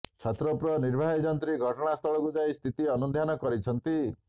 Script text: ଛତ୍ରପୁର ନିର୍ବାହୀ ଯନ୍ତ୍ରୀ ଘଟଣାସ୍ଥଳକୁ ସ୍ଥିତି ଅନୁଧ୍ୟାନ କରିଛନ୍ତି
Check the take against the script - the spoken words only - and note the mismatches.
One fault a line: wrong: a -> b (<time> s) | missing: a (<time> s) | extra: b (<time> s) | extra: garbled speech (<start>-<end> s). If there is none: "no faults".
extra: ଯାଇ (2.3 s)